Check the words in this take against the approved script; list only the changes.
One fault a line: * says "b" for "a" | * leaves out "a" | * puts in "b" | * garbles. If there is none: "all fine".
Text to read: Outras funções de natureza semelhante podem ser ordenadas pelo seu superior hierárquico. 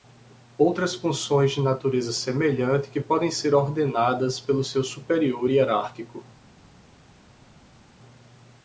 * puts in "que"